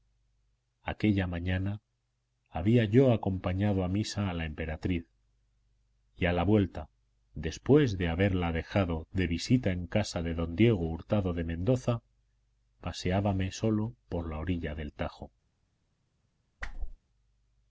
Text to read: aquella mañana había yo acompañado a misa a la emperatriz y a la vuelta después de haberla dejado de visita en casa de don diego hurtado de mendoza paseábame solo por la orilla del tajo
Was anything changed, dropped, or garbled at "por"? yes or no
no